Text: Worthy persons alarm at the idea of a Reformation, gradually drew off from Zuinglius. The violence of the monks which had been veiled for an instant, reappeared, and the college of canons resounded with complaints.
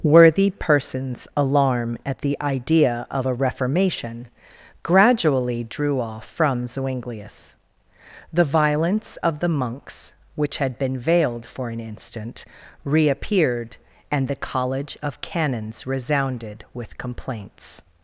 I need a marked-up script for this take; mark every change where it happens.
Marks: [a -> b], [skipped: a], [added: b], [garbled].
Worthy persons alarm at the idea of a Reformation, gradually drew off from Zuinglius. The violence of the monks which had been veiled for an instant, reappeared, and the college of canons resounded with complaints.